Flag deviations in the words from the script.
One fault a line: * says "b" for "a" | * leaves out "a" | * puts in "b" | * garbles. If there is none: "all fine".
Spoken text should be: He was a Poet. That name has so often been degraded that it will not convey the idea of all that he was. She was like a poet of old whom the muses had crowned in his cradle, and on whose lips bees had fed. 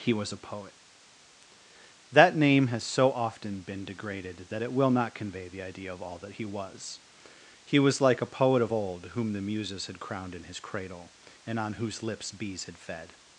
* says "He" for "She"